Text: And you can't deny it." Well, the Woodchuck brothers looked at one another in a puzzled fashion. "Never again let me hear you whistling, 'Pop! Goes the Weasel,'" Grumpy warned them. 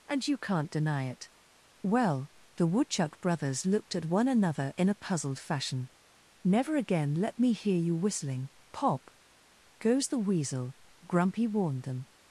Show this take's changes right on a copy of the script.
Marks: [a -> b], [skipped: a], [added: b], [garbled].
And you can't deny it." Well, the Woodchuck brothers looked at one another in a puzzled fashion. "Never again let me hear you whistling, 'Pop! Goes the Weasel,'" Grumpy warned them.